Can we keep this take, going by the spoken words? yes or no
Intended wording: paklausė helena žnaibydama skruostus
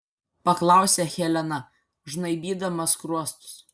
yes